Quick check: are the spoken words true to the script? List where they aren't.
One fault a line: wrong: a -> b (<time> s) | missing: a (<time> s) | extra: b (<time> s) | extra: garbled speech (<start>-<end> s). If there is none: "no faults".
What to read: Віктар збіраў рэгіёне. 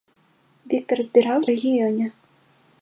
no faults